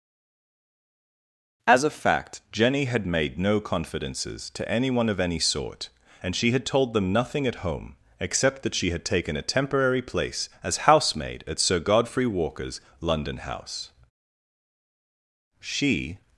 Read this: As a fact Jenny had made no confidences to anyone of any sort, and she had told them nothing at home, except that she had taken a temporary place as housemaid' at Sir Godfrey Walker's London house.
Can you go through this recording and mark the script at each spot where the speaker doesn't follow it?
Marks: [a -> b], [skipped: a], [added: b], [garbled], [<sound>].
As a fact Jenny had made no confidences to anyone of any sort, and she had told them nothing at home, except that she had taken a temporary place as housemaid' at Sir Godfrey Walker's London house. [added: She]